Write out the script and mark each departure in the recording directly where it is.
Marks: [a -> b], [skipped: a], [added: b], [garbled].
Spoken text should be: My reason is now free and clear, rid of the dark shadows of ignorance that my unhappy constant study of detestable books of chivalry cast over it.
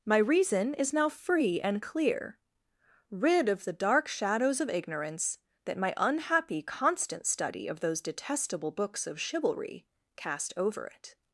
My reason is now free and clear, rid of the dark shadows of ignorance that my unhappy constant study of [added: those] detestable books of chivalry cast over it.